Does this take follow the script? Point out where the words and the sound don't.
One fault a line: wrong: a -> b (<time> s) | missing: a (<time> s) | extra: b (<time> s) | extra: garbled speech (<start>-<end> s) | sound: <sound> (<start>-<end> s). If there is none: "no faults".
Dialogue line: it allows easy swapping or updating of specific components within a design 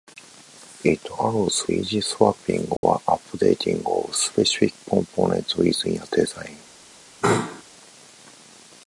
sound: dropout (2.8-2.8 s)
sound: sneeze (7.2-7.6 s)